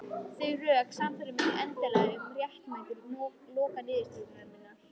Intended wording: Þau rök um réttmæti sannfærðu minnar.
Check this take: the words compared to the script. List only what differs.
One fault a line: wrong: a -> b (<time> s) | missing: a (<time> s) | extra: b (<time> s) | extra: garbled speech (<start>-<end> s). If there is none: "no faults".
extra: sannfærðu mig endanlega (1.0 s)
wrong: sannfærðu -> lokaniðurstöðu (3.6 s)